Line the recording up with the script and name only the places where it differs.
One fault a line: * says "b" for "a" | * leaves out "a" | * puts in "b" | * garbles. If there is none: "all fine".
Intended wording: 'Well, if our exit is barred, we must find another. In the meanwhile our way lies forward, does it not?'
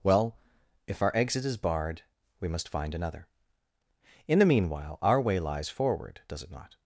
all fine